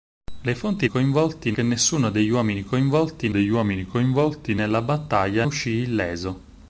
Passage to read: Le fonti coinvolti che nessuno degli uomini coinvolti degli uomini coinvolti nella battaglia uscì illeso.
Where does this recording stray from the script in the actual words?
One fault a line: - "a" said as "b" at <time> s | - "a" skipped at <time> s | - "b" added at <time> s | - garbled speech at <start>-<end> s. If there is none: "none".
none